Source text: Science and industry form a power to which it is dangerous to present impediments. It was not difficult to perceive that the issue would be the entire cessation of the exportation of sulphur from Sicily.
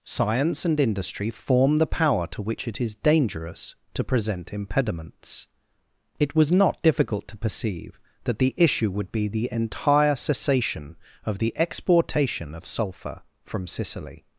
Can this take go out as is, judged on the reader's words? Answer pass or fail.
fail